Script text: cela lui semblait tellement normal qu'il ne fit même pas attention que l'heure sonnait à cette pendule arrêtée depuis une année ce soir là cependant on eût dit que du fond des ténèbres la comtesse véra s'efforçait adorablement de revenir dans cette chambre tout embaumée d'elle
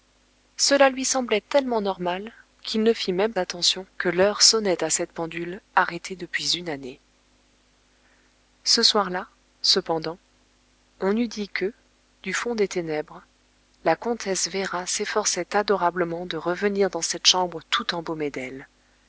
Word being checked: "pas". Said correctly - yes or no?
no